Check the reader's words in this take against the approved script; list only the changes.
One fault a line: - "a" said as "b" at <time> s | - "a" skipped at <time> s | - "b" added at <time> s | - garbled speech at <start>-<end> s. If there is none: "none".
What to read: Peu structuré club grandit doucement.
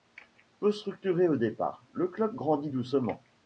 - "au départ le" added at 1.3 s